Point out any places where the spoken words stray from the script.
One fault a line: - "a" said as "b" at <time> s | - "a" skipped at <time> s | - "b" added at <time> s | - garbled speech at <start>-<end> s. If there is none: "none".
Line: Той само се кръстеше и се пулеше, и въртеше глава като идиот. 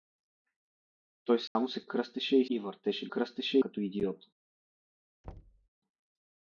- "се пулеше" skipped at 2.5 s
- "глава" said as "кръстеше" at 3.1 s